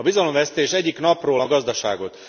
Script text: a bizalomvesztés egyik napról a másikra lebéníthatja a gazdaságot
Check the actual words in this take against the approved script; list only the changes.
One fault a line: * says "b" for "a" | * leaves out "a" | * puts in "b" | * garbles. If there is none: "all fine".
* leaves out "másikra lebéníthatja"